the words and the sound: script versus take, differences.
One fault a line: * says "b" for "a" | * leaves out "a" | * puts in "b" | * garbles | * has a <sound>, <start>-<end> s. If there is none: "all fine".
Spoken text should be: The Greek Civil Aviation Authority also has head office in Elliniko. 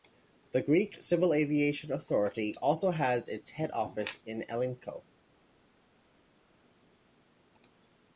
* puts in "its"